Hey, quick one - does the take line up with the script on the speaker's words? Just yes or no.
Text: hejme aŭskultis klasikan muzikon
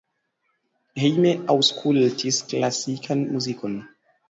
yes